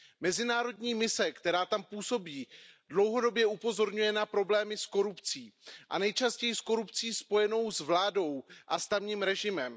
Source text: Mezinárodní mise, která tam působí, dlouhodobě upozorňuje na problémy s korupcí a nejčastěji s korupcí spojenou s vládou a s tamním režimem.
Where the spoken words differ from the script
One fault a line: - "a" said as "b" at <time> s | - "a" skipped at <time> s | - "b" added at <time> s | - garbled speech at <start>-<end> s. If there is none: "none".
none